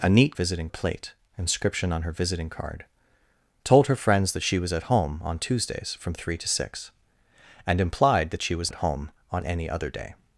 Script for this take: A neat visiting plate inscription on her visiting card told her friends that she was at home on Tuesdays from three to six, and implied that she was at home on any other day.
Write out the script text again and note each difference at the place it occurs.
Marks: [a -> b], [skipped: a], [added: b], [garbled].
A neat visiting plate inscription on her visiting card told her friends that she was at home on Tuesdays from three to six, and implied that she was at home on any other day.